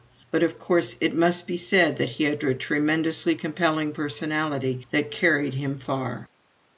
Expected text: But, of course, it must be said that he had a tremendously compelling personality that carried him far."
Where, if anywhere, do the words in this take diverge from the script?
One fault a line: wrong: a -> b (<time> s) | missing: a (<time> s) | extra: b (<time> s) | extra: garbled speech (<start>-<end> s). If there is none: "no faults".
no faults